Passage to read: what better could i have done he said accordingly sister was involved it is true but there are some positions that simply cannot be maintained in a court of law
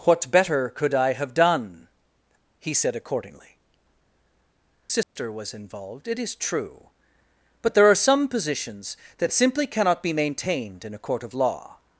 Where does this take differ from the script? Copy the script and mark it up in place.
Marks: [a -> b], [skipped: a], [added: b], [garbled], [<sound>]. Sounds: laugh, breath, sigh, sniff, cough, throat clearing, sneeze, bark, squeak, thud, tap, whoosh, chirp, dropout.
what better could i have done he said accordingly sister [dropout] was involved it is true but there are some positions that simply cannot be maintained in a court of law